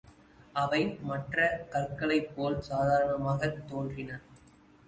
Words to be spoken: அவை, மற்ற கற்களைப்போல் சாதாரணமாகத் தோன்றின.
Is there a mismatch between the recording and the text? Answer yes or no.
no